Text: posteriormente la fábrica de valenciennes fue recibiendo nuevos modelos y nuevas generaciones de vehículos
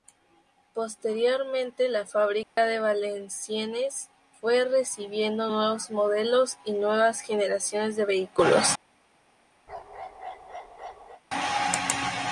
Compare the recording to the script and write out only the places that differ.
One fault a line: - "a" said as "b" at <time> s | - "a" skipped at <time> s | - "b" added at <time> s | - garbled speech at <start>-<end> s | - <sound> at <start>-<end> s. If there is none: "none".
- dropout at 2.4-2.6 s
- bark at 9.7-11.2 s